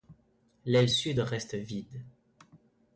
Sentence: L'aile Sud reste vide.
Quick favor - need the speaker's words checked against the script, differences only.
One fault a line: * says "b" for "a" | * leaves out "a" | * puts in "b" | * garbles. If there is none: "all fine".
all fine